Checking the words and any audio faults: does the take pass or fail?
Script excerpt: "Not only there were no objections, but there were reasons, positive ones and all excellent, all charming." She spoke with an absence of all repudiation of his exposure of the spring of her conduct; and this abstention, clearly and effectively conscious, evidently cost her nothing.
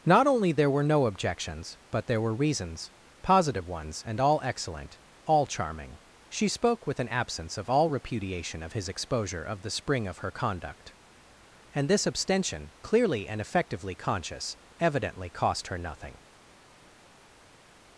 pass